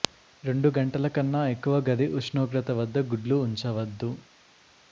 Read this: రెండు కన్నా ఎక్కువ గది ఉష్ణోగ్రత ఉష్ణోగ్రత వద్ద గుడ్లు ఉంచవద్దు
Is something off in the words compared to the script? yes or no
yes